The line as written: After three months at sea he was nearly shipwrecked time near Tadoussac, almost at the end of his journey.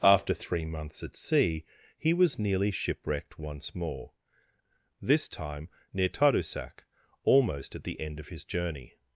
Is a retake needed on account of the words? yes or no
yes